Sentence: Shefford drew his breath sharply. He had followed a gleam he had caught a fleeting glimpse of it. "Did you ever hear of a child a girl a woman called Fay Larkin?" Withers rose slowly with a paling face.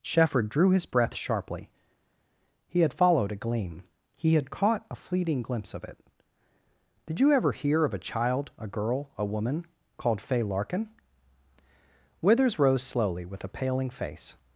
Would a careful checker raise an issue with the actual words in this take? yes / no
no